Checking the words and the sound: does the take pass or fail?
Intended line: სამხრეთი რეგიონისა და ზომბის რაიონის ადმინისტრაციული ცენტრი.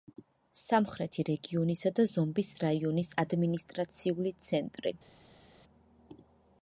pass